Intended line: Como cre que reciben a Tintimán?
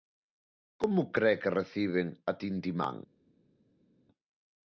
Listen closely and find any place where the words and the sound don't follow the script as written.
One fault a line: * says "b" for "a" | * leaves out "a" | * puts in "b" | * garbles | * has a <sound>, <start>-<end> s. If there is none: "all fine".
all fine